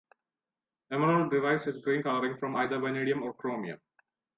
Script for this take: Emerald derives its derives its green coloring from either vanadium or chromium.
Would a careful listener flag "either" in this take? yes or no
no